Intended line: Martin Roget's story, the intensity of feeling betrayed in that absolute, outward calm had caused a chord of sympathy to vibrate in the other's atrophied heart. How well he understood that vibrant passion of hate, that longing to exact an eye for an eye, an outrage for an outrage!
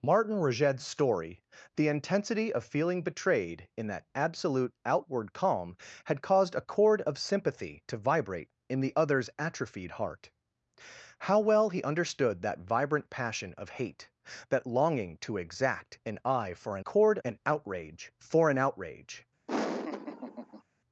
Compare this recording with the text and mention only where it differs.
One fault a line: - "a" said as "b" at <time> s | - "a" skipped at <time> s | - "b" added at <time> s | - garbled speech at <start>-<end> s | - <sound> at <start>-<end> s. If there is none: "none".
- "eye" said as "chord" at 16.8 s
- laugh at 19.5-20.6 s